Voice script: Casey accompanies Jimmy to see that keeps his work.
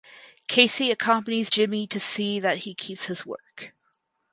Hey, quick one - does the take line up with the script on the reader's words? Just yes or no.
no